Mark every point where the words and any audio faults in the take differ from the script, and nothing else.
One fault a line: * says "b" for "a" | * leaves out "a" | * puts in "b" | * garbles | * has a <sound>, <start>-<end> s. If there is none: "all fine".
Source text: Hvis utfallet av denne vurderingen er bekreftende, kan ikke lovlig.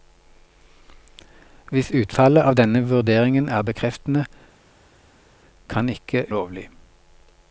all fine